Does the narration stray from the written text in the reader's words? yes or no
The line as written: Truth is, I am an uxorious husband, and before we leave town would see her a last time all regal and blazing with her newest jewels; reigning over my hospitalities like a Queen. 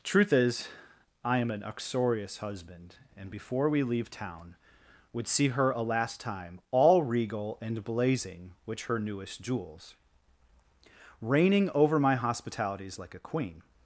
yes